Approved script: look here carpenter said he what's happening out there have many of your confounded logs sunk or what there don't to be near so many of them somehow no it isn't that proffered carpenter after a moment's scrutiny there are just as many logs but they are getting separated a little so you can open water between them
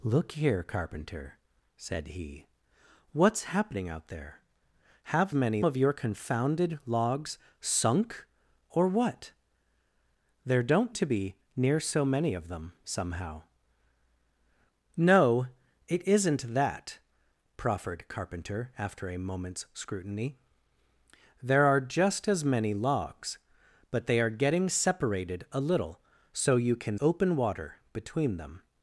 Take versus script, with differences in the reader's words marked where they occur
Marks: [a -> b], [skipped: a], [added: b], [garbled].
look here carpenter said he what's happening out there have many of your confounded logs sunk or what there don't to be near so many of them somehow no it isn't that proffered carpenter after a moment's scrutiny there are just as many logs but they are getting separated a little so you can open water between them